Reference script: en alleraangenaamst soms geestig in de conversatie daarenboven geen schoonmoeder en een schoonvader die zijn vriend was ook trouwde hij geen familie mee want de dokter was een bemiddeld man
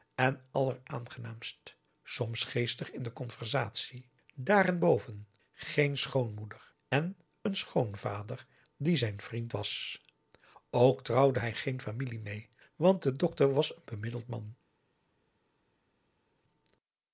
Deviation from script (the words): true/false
false